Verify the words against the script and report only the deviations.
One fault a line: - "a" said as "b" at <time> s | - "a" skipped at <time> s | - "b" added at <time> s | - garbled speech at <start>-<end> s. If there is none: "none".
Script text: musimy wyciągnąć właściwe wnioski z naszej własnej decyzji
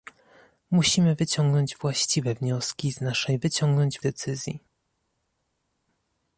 - "własnej" said as "wyciągnąć" at 3.4 s